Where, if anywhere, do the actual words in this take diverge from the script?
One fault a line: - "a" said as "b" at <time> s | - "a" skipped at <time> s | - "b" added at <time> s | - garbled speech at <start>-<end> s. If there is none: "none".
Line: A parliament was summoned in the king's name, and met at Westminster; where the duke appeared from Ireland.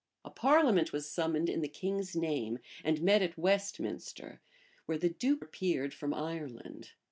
none